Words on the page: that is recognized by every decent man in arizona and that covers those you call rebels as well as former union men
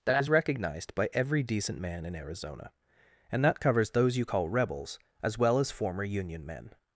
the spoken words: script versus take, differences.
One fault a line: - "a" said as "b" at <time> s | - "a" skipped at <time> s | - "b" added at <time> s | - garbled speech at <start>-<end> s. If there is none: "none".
none